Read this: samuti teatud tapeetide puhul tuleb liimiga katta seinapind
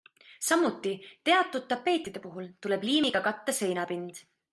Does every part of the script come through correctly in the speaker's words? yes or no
yes